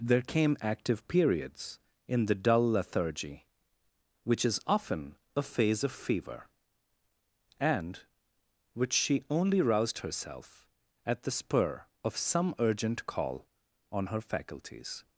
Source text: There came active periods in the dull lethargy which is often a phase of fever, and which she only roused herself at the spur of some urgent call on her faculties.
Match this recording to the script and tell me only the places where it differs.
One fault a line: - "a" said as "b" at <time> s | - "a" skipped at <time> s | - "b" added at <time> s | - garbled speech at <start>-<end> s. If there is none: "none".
none